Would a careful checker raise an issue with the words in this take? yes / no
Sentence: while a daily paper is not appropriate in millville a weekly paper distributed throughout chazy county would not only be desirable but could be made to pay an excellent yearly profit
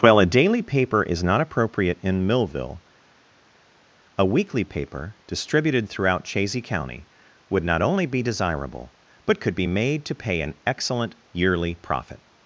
no